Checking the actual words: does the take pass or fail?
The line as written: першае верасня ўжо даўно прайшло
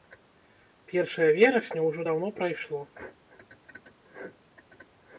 pass